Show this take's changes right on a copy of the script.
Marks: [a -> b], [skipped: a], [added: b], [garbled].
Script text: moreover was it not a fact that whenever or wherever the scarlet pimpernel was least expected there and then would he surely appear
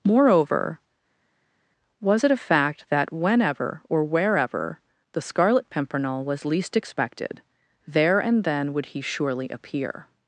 moreover was it [skipped: not] a fact that whenever or wherever the scarlet pimpernel was least expected there and then would he surely appear